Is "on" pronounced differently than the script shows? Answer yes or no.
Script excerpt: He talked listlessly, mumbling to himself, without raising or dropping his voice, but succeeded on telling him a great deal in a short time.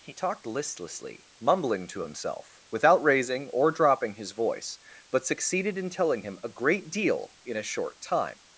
yes